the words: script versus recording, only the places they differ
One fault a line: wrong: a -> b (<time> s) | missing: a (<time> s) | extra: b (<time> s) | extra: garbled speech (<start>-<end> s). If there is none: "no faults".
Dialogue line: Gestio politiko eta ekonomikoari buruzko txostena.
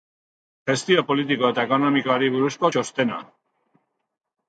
no faults